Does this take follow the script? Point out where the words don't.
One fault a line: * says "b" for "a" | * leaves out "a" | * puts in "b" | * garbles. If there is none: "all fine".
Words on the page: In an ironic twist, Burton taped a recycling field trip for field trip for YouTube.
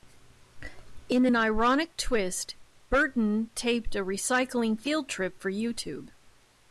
* leaves out "field trip for"